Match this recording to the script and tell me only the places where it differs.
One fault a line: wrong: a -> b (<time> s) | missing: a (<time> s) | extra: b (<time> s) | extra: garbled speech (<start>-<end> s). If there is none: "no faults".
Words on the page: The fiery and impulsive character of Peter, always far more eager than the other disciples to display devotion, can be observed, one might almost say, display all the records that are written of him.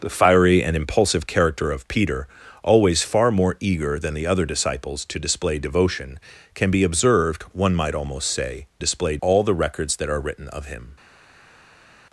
no faults